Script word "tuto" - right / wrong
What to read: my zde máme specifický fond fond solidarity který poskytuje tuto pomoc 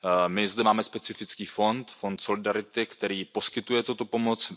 right